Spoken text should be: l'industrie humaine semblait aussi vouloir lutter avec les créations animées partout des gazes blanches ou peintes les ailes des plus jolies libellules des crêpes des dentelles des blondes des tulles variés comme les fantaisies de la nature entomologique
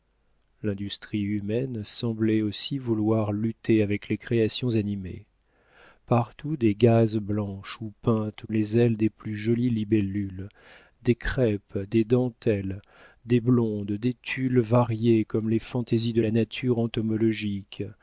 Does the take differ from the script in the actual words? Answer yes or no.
no